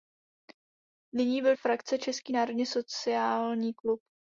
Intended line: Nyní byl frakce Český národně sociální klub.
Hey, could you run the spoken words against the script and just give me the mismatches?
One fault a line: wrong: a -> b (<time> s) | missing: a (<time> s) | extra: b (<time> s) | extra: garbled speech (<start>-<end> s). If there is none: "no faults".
no faults